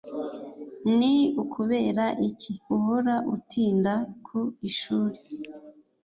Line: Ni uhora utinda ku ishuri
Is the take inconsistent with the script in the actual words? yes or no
yes